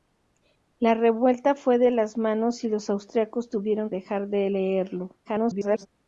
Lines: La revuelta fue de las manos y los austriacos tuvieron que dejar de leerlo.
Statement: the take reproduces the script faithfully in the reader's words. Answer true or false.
false